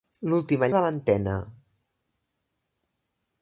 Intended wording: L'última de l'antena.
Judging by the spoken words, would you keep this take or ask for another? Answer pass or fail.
pass